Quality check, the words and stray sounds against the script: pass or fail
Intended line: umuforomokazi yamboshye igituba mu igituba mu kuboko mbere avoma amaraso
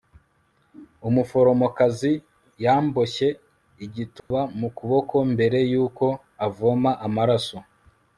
fail